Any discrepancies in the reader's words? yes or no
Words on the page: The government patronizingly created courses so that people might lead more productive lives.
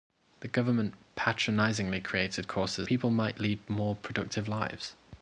yes